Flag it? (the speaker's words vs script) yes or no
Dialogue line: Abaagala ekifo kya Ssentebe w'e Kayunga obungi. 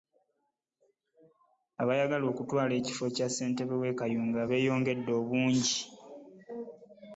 yes